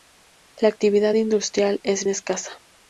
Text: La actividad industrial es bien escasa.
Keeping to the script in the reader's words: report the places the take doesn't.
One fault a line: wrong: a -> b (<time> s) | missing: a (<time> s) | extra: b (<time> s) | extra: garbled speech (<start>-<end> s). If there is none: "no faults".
missing: bien (2.1 s)